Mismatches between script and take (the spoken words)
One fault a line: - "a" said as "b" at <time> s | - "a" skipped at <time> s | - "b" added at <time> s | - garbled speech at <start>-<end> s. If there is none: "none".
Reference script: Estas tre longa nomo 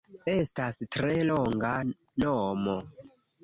none